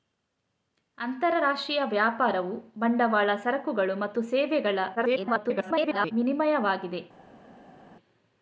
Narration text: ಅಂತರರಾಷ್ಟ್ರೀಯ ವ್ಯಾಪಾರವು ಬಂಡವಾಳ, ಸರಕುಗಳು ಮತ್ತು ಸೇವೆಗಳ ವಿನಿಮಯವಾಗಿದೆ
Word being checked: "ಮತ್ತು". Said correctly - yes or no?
yes